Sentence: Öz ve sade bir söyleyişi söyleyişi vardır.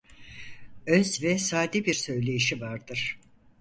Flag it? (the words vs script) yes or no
yes